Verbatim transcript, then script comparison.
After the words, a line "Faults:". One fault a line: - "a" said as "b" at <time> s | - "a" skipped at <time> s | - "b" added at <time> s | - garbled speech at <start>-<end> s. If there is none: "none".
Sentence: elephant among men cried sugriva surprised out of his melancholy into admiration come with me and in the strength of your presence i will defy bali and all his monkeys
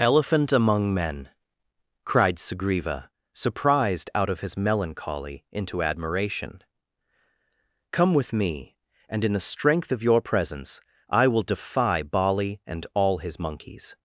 elephant among men cried sugriva surprised out of his melancholy into admiration come with me and in the strength of your presence i will defy bali and all his monkeys
Faults:
none